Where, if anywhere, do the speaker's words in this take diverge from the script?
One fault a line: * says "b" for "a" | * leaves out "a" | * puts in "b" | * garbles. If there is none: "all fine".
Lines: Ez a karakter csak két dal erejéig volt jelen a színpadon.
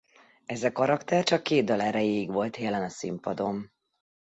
all fine